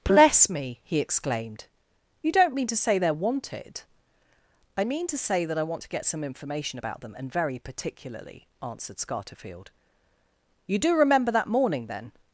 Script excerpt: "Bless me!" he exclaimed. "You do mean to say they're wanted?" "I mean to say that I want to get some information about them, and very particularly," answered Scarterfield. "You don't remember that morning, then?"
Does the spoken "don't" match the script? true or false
false